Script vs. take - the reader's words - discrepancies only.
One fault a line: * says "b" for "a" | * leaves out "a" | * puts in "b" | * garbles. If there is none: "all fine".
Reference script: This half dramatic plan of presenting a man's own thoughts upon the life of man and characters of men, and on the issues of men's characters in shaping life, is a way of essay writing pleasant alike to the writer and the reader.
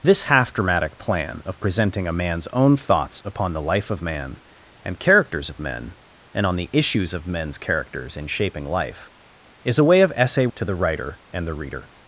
* leaves out "writing pleasant alike"